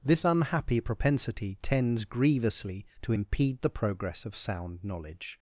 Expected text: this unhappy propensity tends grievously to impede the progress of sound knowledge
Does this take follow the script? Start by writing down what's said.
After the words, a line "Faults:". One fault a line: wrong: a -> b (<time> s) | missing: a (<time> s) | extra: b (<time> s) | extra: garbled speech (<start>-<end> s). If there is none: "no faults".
this unhappy propensity tends grievously to impede the progress of sound knowledge
Faults:
no faults